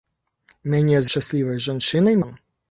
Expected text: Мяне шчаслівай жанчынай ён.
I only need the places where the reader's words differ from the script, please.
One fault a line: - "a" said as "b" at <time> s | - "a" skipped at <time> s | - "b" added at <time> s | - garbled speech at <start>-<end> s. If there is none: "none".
none